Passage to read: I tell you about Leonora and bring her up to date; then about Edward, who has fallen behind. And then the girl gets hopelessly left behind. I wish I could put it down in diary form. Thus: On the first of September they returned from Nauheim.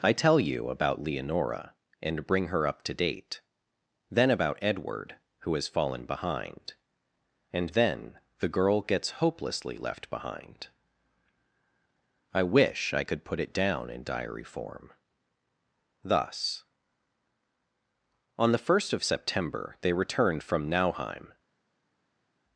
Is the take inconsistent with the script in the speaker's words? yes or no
no